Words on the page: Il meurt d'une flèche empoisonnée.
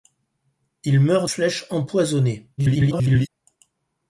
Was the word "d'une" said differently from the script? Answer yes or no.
yes